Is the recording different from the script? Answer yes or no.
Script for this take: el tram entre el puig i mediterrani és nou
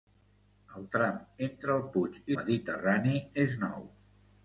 no